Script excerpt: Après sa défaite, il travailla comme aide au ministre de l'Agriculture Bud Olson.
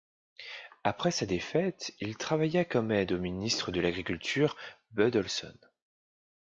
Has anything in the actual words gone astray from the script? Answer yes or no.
no